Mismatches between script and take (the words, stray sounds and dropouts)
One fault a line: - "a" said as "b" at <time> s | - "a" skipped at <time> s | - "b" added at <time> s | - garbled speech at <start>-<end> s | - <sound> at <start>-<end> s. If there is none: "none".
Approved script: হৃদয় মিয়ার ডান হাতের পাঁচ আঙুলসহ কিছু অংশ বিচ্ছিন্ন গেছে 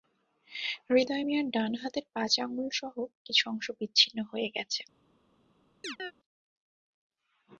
- "হয়ে" added at 4.3 s
- chirp at 5.8-6.1 s